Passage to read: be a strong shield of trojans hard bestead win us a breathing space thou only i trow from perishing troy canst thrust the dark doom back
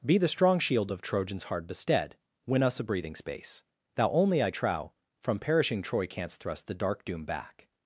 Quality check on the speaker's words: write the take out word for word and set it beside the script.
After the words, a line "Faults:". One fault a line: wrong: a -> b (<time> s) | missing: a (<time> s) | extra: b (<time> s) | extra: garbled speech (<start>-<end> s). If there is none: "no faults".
be the strong shield of trojans hard bestead win us a breathing space thou only i trow from perishing troy canst thrust the dark doom back
Faults:
wrong: a -> the (0.2 s)